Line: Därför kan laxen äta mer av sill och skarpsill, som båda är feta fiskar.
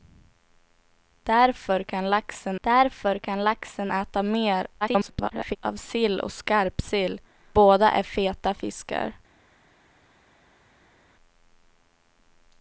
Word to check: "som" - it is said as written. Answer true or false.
false